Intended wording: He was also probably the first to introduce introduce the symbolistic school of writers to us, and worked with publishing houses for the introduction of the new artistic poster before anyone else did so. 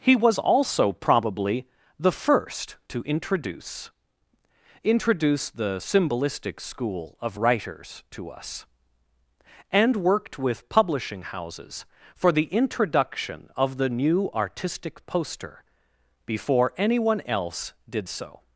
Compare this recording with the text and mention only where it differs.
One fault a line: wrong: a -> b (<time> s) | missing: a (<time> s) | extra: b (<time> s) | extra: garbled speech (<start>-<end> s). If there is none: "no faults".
no faults